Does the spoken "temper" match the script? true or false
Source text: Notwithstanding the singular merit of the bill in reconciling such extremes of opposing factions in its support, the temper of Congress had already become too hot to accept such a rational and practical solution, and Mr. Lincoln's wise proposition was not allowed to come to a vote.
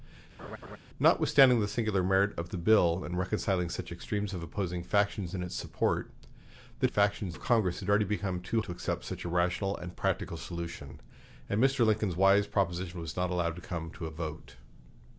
false